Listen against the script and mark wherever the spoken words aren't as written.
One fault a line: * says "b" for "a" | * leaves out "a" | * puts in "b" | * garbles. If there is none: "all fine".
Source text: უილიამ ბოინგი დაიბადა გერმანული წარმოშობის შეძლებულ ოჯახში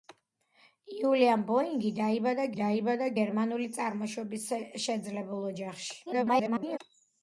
* puts in "დაიბადა"
* garbles